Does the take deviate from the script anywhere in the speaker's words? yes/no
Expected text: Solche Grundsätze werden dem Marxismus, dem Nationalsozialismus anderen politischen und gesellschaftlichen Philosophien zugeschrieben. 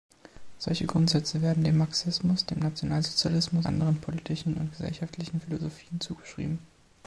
no